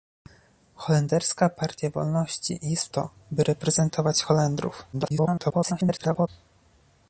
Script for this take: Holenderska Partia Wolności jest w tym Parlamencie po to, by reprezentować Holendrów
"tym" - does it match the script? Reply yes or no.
no